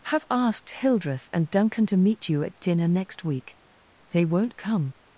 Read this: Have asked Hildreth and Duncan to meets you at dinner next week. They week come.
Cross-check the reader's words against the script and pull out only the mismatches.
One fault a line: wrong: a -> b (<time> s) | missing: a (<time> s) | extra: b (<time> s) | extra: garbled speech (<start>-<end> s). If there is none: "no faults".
wrong: meets -> meet (2.0 s)
wrong: week -> won't (4.2 s)